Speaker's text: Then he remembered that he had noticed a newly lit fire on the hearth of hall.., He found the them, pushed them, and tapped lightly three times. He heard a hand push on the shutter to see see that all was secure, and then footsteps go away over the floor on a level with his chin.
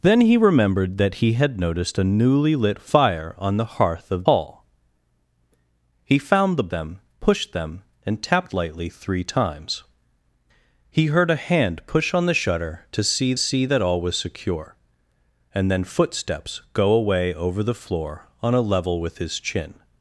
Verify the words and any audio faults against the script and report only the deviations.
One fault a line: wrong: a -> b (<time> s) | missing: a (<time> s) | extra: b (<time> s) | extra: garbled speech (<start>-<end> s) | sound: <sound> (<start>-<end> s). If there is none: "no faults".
no faults